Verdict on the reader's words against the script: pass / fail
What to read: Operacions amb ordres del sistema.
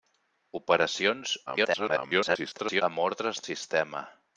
fail